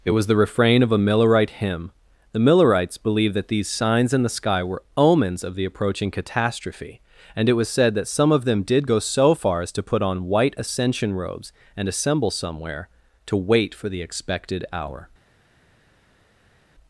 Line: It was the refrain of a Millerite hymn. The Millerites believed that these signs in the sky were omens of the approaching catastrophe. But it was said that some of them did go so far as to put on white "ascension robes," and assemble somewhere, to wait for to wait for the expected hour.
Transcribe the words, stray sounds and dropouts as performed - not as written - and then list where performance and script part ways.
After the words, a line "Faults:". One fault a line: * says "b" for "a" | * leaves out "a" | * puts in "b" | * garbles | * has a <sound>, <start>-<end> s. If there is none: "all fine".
It was the refrain of a Millerite hymn. The Millerites believed that these signs in the sky were omens of the approaching catastrophe. And it was said that some of them did go so far as to put on white "ascension robes," and assemble somewhere, to wait for the expected hour.
Faults:
* says "And" for "But"
* leaves out "to wait for"